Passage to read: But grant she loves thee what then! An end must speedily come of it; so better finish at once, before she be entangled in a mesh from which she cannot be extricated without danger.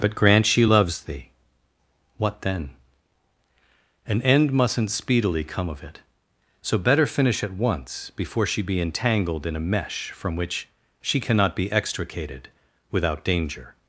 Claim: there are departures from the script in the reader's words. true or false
true